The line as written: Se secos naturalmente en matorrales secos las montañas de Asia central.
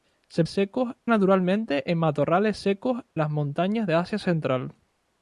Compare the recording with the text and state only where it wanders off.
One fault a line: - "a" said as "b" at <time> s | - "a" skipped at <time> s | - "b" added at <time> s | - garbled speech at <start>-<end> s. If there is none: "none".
none